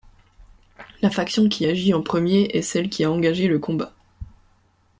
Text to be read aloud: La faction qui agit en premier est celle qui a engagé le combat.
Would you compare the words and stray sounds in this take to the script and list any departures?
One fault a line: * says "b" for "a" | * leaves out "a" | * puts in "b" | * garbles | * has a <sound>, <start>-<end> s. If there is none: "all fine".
all fine